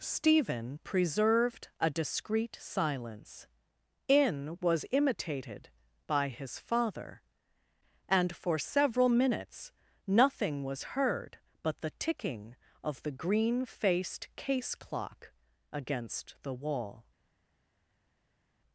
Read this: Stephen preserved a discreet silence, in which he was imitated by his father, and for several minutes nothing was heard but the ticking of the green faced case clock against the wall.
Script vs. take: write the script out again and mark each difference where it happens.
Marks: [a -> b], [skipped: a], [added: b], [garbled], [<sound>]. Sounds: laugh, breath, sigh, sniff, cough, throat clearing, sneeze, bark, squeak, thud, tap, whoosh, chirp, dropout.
Stephen preserved a discreet silence, in [skipped: which he] was imitated by his father, and for several minutes nothing was heard but the ticking of the green faced case clock against the wall.